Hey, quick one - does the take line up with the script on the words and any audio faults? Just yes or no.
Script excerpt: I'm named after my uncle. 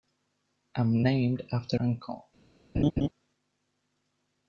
no